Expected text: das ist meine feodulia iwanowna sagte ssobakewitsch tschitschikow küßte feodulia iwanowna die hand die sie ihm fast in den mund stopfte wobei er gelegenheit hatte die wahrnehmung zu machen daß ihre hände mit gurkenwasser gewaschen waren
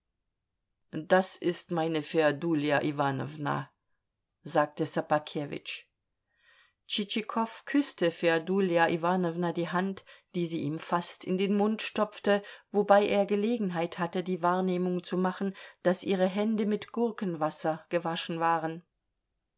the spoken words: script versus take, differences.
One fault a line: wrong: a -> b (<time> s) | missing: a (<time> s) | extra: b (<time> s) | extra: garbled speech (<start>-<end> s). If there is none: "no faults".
no faults